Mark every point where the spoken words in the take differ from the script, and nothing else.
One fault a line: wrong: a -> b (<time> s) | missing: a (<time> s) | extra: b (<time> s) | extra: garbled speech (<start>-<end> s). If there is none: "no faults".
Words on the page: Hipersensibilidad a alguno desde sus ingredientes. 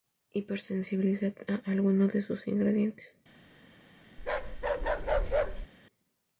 wrong: desde -> de (2.1 s)